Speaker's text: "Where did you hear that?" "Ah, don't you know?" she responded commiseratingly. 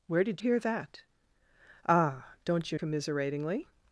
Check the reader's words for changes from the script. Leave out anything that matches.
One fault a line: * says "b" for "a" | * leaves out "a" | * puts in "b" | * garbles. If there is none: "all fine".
* leaves out "you"
* leaves out "know she responded"